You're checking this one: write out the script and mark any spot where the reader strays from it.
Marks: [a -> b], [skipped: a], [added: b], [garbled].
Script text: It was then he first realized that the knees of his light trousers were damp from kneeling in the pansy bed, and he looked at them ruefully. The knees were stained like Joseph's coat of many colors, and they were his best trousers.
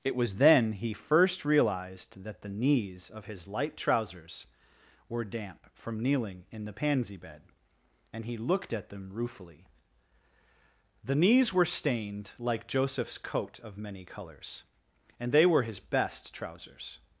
It was then he first realized that the knees of his light trousers were damp from kneeling in the pansy bed, and he looked at them ruefully. The knees were stained like Joseph's coat of many colors, and they were his best trousers.